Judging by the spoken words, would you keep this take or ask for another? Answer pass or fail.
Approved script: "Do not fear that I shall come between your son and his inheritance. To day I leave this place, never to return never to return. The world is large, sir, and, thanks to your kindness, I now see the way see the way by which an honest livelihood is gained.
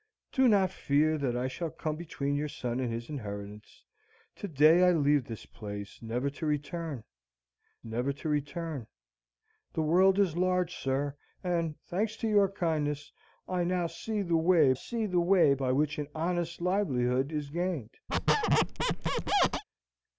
pass